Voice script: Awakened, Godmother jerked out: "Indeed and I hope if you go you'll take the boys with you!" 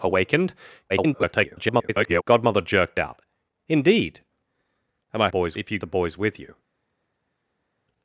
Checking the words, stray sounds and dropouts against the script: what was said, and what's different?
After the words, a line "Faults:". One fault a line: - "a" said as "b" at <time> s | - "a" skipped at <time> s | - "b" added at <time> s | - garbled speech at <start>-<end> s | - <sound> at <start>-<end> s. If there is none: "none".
Awakened, [garbled] Godmother jerked out: "Indeed and I boys if you the boys with you!"
Faults:
- garbled speech at 0.9-2.2 s
- "hope" said as "boys" at 5.3 s
- "go you'll take" skipped at 5.8 s